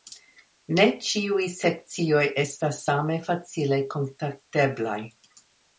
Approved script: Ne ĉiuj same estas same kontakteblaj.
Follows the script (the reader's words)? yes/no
no